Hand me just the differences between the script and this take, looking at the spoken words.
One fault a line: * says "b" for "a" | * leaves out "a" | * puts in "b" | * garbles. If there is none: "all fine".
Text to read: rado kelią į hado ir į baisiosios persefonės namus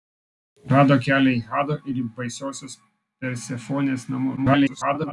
* garbles